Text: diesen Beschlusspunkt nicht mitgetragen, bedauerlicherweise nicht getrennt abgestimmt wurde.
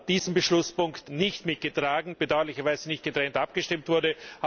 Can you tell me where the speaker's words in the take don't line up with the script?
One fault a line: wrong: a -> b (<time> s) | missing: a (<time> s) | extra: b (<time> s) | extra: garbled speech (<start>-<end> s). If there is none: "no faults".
no faults